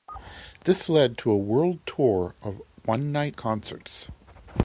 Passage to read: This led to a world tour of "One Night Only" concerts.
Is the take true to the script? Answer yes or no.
no